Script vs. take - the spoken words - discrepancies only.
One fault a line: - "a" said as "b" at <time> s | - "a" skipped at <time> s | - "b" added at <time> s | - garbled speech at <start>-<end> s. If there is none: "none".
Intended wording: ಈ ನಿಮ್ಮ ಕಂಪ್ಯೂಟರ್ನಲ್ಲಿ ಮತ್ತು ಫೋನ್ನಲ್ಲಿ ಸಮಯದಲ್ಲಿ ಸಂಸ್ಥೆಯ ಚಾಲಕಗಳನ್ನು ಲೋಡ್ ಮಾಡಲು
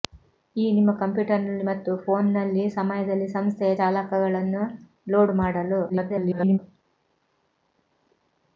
- garbled speech at 5.9-6.6 s